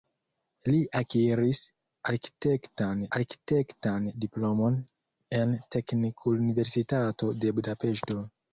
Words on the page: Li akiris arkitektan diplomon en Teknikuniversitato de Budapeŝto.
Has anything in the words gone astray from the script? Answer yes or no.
yes